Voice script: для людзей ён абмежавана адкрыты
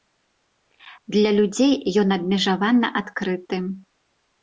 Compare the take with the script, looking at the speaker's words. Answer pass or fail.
pass